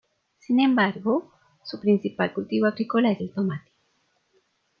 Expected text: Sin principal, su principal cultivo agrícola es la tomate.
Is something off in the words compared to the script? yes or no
yes